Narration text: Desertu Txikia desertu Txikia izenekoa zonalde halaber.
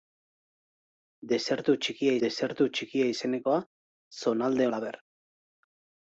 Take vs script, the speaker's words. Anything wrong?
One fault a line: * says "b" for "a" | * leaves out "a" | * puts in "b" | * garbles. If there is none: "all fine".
all fine